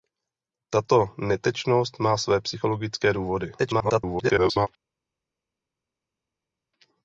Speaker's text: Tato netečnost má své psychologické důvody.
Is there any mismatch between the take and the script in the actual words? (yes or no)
yes